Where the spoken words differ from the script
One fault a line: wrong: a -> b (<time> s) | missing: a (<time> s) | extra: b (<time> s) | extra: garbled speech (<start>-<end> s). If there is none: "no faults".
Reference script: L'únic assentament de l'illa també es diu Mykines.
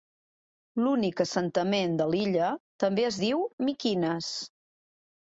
no faults